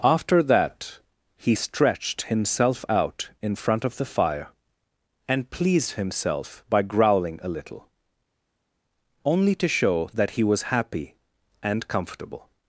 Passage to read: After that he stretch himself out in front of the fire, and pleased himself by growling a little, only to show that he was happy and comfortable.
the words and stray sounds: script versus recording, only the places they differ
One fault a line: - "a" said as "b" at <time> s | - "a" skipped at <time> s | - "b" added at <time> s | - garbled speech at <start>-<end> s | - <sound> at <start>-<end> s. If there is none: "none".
- "stretch" said as "stretched" at 1.5 s